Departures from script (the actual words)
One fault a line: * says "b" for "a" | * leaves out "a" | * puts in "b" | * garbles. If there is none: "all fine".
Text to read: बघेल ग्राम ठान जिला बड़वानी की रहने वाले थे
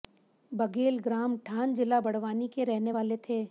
* says "के" for "की"